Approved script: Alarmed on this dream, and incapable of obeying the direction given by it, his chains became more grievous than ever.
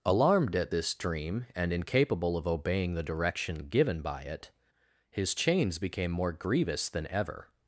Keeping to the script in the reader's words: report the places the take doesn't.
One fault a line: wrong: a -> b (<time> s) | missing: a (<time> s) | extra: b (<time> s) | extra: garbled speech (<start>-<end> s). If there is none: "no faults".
wrong: on -> at (0.6 s)